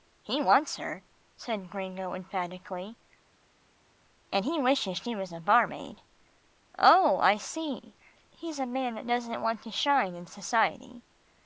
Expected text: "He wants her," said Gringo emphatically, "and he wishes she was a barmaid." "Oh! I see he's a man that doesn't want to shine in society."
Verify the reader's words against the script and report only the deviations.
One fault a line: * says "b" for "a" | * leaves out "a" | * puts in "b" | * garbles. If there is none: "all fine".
all fine